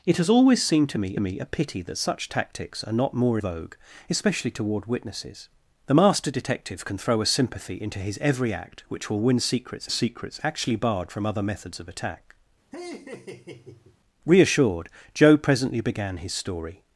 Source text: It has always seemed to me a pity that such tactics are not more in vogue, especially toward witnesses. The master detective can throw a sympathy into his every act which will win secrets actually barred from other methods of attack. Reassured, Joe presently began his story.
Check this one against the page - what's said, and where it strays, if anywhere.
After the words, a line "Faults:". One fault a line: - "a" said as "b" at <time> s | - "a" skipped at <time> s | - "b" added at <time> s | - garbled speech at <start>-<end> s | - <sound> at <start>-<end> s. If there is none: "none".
It has always seemed to me me a pity that such tactics are not more vogue, especially toward witnesses. The master detective can throw a sympathy into his every act which will win secrets secrets actually barred from other methods of attack. Reassured, Joe presently began his story.
Faults:
- "me" added at 1.2 s
- "in" skipped at 3.4 s
- "secrets" added at 9.9 s
- laugh at 12.7-14.0 s